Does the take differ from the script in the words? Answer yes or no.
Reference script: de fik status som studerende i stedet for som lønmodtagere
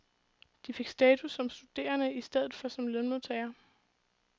no